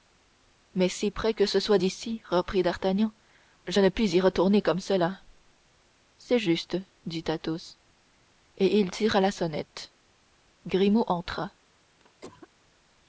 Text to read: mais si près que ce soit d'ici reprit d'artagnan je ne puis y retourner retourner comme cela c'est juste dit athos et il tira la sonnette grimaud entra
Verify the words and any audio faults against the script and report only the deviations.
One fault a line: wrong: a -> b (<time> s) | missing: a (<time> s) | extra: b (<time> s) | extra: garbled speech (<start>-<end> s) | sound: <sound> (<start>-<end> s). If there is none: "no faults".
missing: retourner (4.6 s)
sound: cough (12.0-12.5 s)